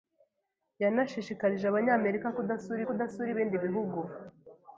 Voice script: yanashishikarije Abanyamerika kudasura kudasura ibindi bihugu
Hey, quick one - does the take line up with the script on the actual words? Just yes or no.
yes